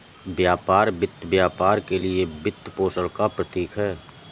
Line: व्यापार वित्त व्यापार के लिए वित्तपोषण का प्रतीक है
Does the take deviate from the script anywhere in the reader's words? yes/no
no